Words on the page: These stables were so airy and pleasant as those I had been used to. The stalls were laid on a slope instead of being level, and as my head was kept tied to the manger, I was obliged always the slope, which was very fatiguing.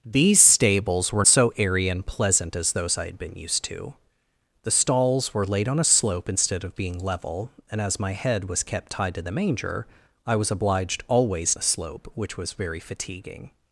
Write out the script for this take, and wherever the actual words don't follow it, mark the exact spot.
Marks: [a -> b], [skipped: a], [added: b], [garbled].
These stables were so airy and pleasant as those I had been used to. The stalls were laid on a slope instead of being level, and as my head was kept tied to the manger, I was obliged always the slope, which was very fatiguing.